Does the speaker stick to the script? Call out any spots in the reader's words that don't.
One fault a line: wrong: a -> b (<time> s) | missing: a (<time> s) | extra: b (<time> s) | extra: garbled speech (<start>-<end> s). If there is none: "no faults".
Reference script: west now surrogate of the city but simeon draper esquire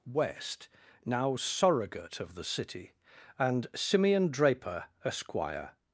wrong: but -> and (3.4 s)